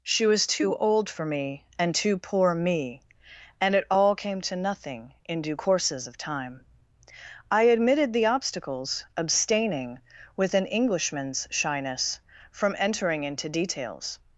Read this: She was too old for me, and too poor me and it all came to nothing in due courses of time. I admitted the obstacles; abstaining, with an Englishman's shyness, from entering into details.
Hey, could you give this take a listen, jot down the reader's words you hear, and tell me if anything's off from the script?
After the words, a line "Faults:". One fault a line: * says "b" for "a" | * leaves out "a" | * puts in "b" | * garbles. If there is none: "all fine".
She was too old for me, and too poor me and it all came to nothing in due courses of time. I admitted the obstacles; abstaining, with an Englishman's shyness, from entering into details.
Faults:
all fine